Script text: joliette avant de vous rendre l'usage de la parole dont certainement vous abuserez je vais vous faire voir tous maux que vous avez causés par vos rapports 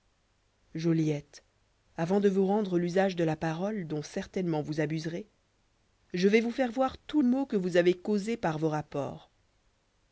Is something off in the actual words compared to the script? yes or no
no